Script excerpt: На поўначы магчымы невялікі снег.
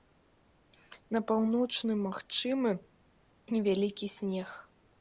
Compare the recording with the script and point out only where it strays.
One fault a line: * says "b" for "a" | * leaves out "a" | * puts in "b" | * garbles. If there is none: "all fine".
all fine